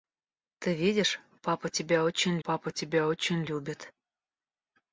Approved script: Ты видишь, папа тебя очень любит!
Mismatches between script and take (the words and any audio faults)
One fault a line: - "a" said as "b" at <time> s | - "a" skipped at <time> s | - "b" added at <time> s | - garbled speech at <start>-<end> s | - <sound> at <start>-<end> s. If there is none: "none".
- "папа тебя очень" added at 2.4 s